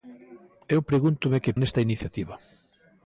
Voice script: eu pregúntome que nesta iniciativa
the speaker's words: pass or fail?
pass